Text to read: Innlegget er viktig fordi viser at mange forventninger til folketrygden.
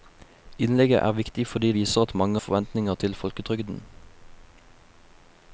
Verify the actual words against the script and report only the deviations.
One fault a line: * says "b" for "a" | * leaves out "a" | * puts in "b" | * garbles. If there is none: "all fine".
all fine